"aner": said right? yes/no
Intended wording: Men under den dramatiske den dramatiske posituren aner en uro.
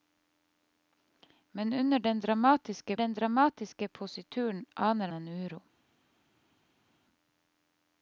yes